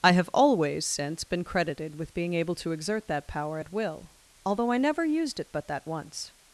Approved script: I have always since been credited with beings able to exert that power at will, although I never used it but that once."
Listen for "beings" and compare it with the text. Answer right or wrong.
wrong